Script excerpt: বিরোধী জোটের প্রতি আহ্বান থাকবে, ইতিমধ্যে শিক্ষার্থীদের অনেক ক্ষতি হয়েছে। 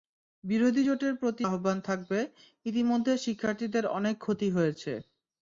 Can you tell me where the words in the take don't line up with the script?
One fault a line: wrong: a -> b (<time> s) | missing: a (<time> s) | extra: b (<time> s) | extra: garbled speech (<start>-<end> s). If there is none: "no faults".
no faults